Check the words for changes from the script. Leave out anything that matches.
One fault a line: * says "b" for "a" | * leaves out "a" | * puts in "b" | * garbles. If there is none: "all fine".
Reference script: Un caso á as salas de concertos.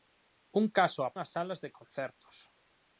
all fine